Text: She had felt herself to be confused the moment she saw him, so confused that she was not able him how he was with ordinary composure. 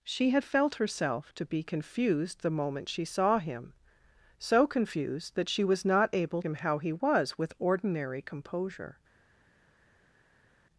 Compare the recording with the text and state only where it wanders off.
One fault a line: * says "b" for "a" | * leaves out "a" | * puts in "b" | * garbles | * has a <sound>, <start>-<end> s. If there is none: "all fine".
all fine